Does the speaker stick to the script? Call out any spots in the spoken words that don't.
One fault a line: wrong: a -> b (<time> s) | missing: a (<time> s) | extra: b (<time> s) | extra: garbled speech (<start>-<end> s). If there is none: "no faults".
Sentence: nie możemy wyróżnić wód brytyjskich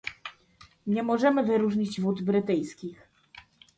no faults